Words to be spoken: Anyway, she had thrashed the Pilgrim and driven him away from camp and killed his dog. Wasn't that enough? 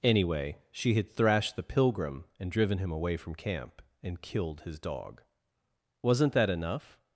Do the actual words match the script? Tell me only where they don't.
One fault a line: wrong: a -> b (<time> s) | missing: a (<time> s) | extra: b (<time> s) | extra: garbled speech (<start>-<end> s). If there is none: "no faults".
no faults